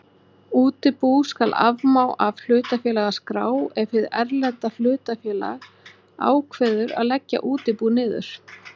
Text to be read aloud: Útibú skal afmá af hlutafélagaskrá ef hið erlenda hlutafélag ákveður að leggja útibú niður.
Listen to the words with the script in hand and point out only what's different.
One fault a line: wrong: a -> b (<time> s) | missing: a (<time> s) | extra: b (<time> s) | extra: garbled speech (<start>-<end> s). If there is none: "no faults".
no faults